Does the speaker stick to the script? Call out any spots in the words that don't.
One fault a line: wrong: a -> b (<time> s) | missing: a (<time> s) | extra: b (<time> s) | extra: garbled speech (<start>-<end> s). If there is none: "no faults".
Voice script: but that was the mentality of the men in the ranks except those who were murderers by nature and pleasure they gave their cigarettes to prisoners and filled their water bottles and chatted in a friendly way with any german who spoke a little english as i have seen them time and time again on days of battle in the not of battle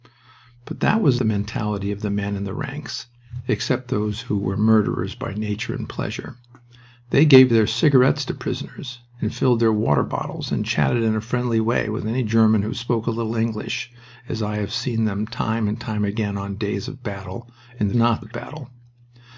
no faults